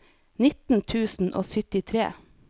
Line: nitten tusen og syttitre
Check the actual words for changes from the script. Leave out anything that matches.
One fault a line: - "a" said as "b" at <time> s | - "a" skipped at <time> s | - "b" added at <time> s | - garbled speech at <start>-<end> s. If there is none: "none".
none